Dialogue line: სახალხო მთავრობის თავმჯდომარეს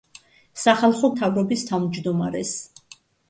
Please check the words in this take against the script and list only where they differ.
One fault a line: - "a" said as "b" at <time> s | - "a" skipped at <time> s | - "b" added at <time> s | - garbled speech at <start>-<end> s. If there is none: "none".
none